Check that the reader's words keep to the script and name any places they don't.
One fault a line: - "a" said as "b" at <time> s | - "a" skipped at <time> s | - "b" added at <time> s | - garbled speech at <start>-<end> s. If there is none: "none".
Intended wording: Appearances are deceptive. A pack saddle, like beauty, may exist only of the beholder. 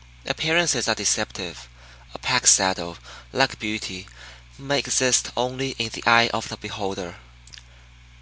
- "in the eye" added at 5.8 s